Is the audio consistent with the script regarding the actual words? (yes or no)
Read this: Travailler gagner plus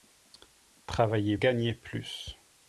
yes